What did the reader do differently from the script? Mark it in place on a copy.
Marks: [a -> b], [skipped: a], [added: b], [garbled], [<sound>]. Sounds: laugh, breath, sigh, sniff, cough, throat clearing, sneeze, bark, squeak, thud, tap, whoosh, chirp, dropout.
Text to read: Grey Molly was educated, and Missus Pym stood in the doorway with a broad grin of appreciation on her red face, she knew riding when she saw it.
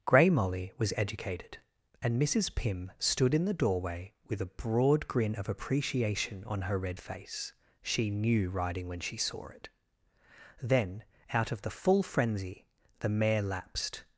Grey Molly was educated, and Missus Pym stood in the doorway with a broad grin of appreciation on her red face, she knew riding when she saw it. [added: Then out of the full frenzy the mare lapsed]